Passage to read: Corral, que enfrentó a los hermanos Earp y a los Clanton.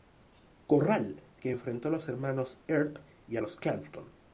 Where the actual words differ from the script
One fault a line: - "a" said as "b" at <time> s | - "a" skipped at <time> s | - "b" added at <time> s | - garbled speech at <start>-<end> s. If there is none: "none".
none